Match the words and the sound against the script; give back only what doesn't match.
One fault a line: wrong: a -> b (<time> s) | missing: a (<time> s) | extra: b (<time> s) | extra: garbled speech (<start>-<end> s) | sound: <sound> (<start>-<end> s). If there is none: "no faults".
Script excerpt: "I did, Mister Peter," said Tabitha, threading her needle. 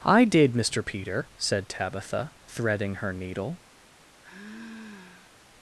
sound: sigh (4.2-5.4 s)